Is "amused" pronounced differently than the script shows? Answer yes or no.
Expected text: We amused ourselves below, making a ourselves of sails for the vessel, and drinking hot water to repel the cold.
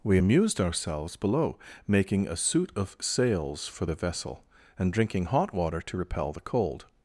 no